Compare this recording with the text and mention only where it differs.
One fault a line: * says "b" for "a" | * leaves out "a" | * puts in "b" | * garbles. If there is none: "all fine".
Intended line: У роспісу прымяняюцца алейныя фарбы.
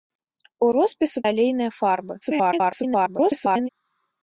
* leaves out "прымяняюцца"
* garbles